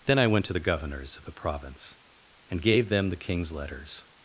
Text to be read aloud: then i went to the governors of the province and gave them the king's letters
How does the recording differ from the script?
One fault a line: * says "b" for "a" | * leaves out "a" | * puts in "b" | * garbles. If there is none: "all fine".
all fine